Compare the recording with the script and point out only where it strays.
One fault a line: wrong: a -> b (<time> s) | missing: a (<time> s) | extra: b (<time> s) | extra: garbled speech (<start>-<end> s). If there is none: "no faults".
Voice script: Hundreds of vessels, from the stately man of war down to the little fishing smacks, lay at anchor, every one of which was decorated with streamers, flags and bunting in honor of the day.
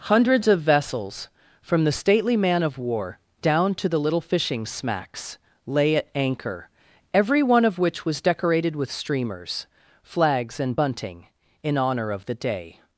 no faults